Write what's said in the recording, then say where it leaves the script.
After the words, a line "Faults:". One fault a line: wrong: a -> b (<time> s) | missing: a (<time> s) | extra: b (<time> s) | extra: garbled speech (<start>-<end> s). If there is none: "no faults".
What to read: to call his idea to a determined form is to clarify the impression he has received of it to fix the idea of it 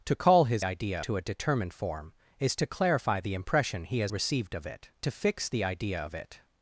to call his idea to a determined form is to clarify the impression he has received of it to fix the idea of it
Faults:
no faults